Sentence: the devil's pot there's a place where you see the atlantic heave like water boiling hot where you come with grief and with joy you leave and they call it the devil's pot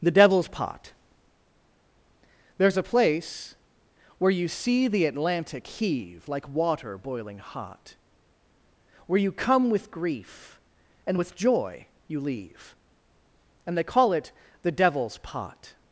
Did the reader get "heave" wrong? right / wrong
right